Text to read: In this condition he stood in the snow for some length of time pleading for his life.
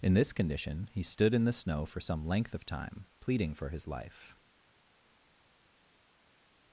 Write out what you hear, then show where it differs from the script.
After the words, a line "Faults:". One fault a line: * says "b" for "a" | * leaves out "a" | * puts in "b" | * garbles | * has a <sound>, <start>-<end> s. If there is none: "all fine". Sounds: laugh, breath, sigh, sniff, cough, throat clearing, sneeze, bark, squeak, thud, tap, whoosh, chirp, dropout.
In this condition he stood in the snow for some length of time pleading for his life.
Faults:
all fine